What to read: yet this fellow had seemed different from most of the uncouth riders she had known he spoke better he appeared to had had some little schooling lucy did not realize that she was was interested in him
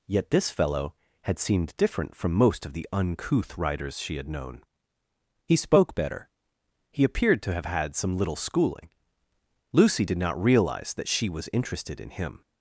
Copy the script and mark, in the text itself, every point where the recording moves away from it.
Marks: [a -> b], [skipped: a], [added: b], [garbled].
yet this fellow had seemed different from most of the uncouth riders she had known he spoke better he appeared to [had -> have] had some little schooling lucy did not realize that she was [skipped: was] interested in him